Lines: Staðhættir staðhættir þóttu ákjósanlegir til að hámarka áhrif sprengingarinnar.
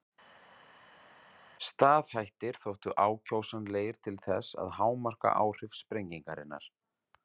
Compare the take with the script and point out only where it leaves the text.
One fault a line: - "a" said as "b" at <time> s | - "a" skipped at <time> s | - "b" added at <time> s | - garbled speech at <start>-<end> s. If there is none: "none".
- "staðhættir" skipped at 2.6 s
- "þess" added at 4.3 s